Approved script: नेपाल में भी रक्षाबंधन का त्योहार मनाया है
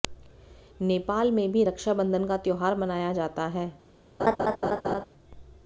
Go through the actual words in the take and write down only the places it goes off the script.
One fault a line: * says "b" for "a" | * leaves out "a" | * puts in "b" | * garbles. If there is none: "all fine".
* puts in "जाता"